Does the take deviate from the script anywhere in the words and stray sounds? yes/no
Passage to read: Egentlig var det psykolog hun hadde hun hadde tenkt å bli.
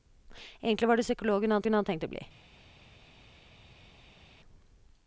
no